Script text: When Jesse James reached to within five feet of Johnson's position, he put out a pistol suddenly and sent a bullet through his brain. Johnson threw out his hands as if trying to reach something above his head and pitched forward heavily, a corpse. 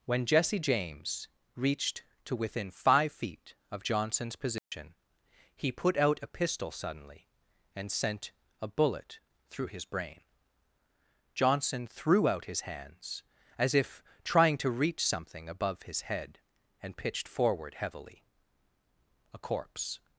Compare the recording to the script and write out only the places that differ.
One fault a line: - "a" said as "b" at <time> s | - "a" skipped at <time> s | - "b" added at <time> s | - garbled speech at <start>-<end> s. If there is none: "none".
none